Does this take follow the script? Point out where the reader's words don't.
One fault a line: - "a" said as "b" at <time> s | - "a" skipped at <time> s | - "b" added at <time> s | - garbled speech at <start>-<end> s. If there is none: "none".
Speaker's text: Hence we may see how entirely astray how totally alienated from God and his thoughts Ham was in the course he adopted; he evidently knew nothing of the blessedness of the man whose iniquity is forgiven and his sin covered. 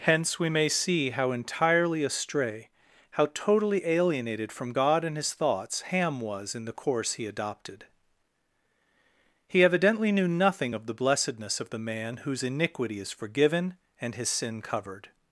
none